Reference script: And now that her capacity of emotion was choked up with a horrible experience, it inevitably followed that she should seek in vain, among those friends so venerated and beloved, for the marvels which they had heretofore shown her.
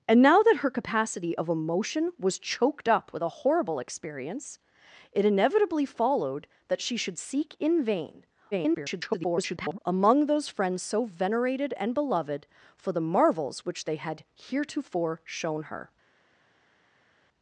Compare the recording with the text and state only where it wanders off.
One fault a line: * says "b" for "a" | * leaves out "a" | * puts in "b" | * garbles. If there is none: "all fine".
* garbles